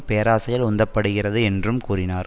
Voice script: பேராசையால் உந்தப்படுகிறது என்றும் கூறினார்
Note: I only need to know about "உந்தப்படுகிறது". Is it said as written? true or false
true